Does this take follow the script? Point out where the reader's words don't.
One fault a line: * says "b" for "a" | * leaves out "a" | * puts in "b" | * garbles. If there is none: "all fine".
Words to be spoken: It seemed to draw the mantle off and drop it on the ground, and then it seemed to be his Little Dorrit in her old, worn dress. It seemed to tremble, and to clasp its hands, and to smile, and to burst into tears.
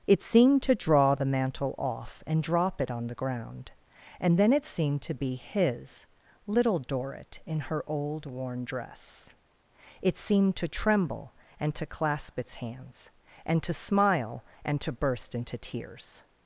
all fine